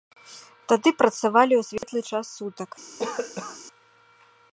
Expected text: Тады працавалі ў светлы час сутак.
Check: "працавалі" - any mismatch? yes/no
no